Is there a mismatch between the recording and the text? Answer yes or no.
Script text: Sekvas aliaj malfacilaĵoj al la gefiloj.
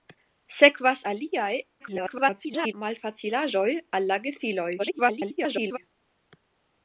yes